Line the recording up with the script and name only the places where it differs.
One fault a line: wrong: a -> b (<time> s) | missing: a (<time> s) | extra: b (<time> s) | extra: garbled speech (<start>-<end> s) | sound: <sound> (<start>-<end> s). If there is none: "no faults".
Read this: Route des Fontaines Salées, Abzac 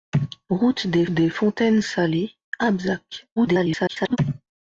extra: des (1.1 s)
extra: garbled speech (3.4-4.2 s)